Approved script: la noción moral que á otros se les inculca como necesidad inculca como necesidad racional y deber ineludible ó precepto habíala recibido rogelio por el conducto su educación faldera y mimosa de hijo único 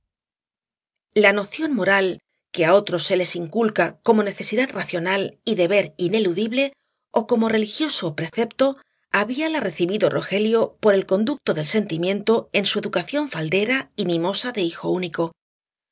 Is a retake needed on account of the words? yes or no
yes